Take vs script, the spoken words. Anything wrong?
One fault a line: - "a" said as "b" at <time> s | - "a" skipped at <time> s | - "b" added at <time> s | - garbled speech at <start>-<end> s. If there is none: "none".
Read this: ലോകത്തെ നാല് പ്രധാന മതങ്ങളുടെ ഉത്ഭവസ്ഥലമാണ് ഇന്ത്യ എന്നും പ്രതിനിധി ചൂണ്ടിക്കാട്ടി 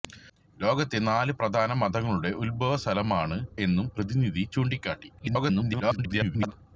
- "ഇന്ത്യ" skipped at 3.4 s
- garbled speech at 5.2-6.5 s